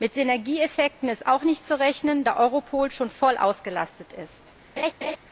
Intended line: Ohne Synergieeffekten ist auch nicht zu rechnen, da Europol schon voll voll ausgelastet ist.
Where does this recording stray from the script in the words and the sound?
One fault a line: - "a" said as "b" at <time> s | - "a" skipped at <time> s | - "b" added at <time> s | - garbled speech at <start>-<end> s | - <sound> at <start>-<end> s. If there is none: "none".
- "Ohne" said as "Mit" at 0.0 s
- "voll" skipped at 3.4 s
- laugh at 4.8-5.2 s